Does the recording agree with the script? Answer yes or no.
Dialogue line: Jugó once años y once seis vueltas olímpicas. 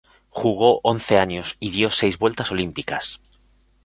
no